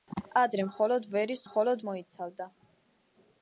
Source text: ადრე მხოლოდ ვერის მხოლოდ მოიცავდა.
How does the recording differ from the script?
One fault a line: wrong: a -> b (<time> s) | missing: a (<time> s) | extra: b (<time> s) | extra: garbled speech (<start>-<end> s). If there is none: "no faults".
no faults